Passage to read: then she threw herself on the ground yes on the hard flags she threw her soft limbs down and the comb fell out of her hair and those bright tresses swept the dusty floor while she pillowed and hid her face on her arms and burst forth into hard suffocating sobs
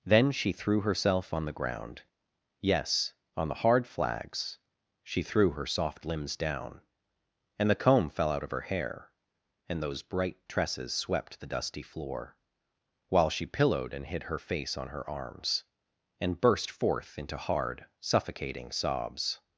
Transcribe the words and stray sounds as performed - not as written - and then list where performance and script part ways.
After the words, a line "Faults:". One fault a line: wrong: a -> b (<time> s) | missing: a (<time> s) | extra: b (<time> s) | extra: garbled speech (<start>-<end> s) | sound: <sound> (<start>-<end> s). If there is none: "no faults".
then she threw herself on the ground yes on the hard flags she threw her soft limbs down and the comb fell out of her hair and those bright tresses swept the dusty floor while she pillowed and hid her face on her arms and burst forth into hard suffocating sobs
Faults:
no faults